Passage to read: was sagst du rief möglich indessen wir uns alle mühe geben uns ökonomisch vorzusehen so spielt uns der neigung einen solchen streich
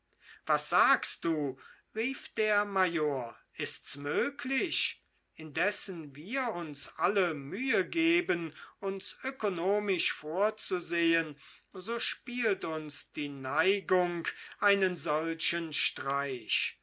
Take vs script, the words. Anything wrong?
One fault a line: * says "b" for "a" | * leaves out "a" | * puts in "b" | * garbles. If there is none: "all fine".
* puts in "der major ist's"
* says "die" for "der"